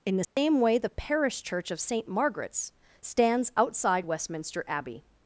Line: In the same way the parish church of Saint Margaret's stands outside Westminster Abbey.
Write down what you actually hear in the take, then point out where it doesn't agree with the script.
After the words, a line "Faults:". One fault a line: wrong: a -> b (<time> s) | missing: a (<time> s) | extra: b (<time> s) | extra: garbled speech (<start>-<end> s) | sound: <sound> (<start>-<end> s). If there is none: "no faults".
In the same way the parish church of Saint Margaret's stands outside Westminster Abbey.
Faults:
sound: dropout (0.2-0.4 s)